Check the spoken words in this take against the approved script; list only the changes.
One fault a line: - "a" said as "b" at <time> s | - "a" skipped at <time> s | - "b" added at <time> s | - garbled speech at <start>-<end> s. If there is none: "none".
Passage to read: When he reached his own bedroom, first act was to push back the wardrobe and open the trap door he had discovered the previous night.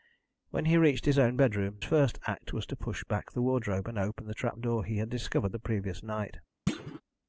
none